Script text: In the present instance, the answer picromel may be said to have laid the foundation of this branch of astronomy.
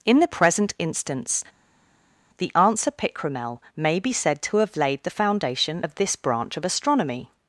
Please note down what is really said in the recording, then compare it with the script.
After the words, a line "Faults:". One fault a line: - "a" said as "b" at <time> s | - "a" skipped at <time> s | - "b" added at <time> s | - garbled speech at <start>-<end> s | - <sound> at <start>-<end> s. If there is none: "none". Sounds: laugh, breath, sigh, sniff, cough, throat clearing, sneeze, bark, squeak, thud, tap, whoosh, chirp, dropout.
In the present instance, the answer picromel may be said to have laid the foundation of this branch of astronomy.
Faults:
none